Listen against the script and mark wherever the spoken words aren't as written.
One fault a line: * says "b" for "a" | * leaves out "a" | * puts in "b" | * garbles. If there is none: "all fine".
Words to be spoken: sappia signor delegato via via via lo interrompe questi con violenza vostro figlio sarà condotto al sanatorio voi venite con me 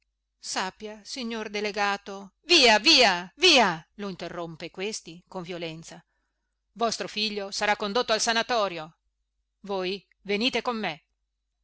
all fine